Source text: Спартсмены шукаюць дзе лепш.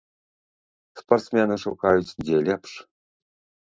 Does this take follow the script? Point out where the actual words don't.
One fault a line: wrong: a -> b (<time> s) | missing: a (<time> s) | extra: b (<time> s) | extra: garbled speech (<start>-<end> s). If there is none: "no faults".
no faults